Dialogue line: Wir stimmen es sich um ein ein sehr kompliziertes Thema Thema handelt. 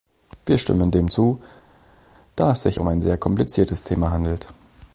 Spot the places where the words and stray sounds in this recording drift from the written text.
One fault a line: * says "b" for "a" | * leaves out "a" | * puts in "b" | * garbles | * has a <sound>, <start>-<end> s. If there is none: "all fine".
* puts in "dem zu da"
* leaves out "ein"
* leaves out "Thema"